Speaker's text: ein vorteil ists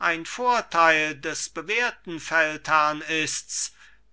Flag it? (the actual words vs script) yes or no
yes